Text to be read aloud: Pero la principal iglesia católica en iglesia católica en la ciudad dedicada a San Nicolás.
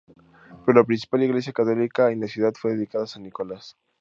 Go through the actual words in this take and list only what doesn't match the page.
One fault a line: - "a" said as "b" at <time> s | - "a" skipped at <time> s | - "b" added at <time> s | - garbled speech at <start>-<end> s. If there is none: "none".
- "iglesia católica en" skipped at 2.2 s
- "fue" added at 2.6 s